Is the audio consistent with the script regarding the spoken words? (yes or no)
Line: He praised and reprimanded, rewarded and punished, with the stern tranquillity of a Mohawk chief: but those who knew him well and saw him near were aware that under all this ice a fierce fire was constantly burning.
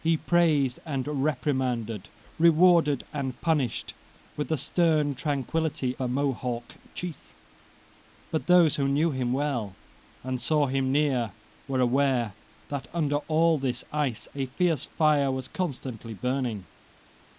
no